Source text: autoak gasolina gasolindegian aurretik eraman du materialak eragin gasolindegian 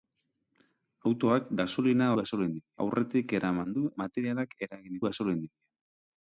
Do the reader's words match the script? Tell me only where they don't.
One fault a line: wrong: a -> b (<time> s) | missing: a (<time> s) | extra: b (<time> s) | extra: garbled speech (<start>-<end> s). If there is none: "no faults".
no faults